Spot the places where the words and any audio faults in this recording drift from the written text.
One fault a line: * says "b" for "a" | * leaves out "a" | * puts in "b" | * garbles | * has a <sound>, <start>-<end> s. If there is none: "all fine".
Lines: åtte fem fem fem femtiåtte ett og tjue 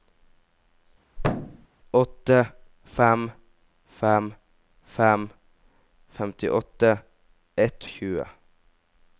* has a thud, 1.2-1.7 s